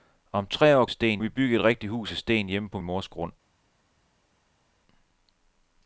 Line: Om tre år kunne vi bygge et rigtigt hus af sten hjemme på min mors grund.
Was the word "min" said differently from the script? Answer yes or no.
yes